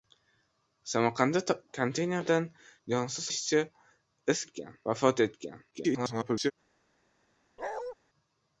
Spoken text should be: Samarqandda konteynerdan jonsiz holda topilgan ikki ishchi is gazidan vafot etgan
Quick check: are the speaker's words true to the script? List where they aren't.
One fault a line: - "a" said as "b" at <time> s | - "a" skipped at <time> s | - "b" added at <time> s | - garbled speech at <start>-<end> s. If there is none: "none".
- "holda topilgan ikki" skipped at 3.3 s
- "gazidan" said as "etgan" at 4.5 s
- garbled speech at 5.7-6.5 s